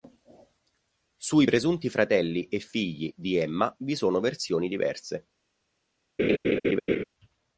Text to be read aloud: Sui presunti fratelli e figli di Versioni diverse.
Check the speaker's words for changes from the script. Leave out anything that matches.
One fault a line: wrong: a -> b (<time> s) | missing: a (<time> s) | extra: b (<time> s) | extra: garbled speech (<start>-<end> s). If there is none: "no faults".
extra: Emma vi sono (3.3 s)